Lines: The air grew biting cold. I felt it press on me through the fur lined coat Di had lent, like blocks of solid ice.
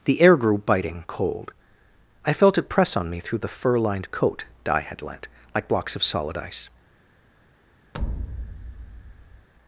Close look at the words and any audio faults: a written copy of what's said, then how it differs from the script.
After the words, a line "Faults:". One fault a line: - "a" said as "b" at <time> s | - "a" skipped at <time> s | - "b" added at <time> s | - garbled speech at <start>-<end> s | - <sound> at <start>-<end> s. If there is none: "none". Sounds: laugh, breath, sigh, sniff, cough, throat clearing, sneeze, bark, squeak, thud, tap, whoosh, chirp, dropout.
The air grew biting cold. I felt it press on me through the fur lined coat Di had lent, like blocks of solid ice.
Faults:
- thud at 7.9-9.5 s